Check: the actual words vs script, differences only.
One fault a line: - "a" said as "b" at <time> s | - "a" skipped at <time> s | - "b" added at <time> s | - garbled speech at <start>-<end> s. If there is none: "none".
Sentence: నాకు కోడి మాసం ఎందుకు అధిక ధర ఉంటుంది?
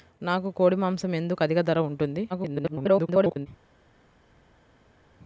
- garbled speech at 2.3-3.5 s